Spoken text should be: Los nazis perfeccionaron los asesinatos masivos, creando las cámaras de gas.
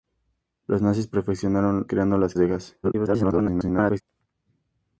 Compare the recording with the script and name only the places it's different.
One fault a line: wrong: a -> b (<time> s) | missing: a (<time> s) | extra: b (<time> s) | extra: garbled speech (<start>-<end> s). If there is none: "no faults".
missing: los asesinatos masivos (1.9 s)
missing: cámaras (2.3 s)
extra: garbled speech (2.8-4.0 s)